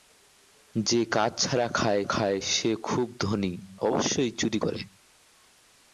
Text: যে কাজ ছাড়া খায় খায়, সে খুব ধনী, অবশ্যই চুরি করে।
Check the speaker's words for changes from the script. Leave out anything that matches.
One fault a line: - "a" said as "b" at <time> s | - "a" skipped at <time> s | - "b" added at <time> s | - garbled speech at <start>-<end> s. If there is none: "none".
none